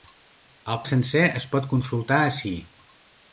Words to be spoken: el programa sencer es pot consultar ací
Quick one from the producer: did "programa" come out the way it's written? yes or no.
no